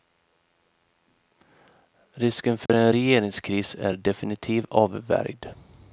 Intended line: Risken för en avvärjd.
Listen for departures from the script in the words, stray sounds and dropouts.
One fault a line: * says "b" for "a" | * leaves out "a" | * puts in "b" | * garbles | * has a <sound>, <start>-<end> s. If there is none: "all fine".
* has a dropout, 2.7-2.7 s
* puts in "regeringskris är definitivt"